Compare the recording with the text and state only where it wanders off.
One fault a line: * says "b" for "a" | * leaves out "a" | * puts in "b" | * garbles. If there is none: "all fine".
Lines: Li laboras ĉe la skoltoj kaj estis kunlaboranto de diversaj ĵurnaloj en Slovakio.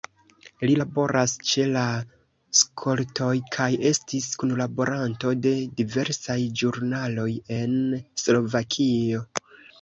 all fine